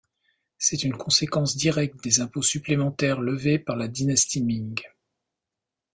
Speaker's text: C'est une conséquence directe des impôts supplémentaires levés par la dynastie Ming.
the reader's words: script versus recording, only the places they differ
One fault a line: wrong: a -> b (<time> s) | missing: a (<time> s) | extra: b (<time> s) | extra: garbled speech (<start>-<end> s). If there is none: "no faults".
no faults